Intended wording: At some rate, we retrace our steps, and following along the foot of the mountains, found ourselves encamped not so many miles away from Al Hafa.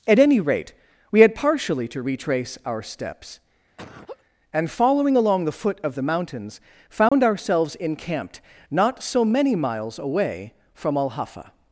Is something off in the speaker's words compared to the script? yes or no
yes